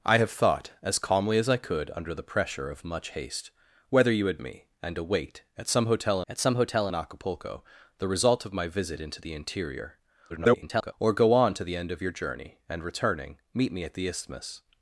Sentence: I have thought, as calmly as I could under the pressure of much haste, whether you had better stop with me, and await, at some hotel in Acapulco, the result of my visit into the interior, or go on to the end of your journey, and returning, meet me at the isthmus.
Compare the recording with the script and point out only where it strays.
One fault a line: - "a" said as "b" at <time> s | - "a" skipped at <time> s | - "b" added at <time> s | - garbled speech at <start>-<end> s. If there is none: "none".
- "better stop with me and await" said as "me and await at some hotel" at 4.4 s
- garbled speech at 10.3-10.9 s